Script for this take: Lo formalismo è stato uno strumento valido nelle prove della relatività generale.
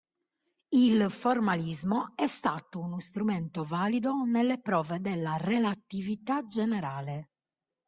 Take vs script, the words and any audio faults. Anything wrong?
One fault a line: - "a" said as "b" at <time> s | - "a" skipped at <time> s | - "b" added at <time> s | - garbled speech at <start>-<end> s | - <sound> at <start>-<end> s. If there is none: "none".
- "Lo" said as "Il" at 0.7 s